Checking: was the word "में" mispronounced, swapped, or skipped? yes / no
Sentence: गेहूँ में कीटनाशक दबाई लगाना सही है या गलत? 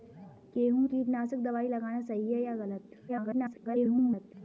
yes